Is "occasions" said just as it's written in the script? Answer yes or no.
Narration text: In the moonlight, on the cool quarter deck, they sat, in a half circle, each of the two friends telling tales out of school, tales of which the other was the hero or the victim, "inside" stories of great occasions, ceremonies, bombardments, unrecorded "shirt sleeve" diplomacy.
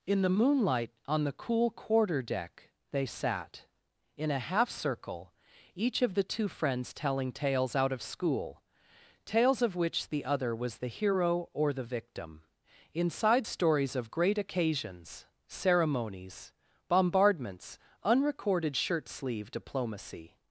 yes